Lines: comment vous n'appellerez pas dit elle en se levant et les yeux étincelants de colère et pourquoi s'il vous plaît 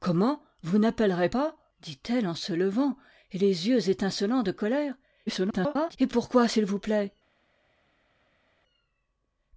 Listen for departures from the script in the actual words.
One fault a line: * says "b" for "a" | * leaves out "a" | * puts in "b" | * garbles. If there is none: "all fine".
* garbles